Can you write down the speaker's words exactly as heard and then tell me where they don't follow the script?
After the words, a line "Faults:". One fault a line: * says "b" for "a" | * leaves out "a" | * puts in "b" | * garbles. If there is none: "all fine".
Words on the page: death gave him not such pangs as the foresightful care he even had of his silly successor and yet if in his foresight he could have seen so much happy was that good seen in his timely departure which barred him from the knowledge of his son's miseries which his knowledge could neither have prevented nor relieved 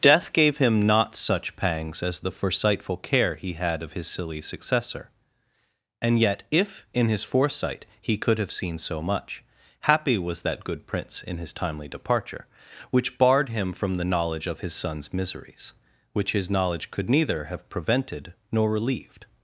death gave him not such pangs as the foresightful care he had of his silly successor and yet if in his foresight he could have seen so much happy was that good prince in his timely departure which barred him from the knowledge of his son's miseries which his knowledge could neither have prevented nor relieved
Faults:
* leaves out "even"
* says "prince" for "seen"